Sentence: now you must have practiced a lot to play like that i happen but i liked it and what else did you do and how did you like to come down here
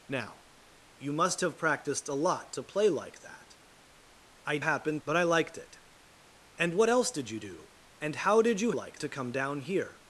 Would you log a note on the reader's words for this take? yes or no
no